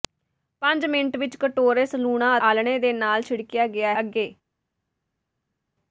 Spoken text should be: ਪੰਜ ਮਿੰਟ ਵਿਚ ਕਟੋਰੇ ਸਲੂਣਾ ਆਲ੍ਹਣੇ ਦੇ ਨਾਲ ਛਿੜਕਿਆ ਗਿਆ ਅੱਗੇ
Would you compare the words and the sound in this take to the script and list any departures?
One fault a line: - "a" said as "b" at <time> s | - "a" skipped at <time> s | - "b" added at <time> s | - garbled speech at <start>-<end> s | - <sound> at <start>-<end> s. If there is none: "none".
none